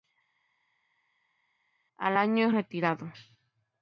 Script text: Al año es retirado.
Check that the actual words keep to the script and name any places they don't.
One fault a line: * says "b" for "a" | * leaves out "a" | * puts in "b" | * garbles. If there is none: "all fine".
all fine